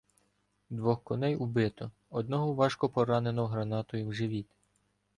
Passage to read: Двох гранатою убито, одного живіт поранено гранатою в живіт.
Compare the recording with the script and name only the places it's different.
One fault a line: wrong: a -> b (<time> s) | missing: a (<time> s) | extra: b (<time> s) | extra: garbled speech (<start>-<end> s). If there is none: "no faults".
wrong: гранатою -> коней (1.0 s)
wrong: живіт -> важко (2.5 s)